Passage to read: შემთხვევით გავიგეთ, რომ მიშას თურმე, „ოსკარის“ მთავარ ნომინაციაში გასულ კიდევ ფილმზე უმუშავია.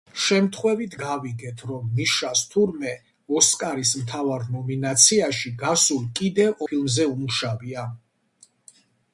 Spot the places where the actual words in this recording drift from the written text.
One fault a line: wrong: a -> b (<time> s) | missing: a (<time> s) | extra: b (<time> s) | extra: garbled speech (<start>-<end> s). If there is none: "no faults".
no faults